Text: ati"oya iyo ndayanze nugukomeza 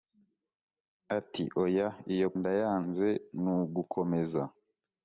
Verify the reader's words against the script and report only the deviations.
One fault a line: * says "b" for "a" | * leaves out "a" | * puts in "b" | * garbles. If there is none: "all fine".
all fine